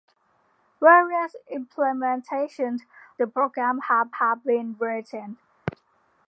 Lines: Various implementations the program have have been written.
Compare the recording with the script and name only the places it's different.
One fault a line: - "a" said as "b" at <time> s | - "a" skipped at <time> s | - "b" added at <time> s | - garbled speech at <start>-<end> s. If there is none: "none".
none